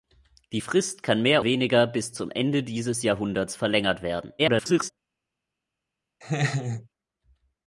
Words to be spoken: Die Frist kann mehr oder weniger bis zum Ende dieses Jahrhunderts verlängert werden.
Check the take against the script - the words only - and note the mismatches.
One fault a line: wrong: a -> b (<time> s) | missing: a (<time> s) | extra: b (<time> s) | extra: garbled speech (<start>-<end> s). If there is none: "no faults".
missing: oder (1.4 s)
extra: garbled speech (4.4-4.9 s)